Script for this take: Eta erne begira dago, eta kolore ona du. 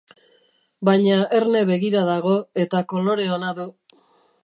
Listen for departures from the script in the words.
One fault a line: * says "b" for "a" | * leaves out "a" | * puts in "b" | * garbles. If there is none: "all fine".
* says "Baina" for "Eta"